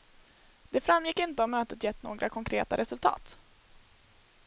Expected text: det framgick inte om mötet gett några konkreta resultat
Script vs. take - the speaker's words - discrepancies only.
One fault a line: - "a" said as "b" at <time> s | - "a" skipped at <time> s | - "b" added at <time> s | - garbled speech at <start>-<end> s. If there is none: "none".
none